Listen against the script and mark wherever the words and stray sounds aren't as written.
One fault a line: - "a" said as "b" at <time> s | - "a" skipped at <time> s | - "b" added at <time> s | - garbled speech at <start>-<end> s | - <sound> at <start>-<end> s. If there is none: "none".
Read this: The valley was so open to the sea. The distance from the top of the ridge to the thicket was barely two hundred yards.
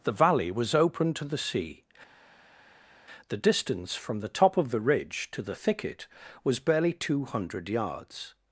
- "so" skipped at 0.7 s